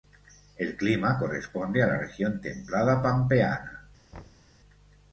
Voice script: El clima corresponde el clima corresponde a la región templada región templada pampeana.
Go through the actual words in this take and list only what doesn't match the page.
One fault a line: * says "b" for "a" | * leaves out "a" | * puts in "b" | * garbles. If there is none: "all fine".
* leaves out "el clima corresponde"
* leaves out "región templada"